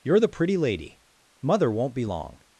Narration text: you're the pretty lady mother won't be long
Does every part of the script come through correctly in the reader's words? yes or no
yes